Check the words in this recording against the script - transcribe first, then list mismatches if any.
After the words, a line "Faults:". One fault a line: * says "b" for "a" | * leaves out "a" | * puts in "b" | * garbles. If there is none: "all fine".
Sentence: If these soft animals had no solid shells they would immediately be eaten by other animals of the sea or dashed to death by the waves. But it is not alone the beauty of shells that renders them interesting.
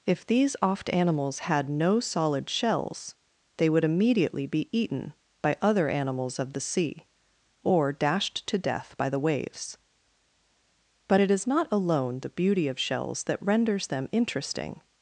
If these oft animals had no solid shells they would immediately be eaten by other animals of the sea or dashed to death by the waves. But it is not alone the beauty of shells that renders them interesting.
Faults:
* says "oft" for "soft"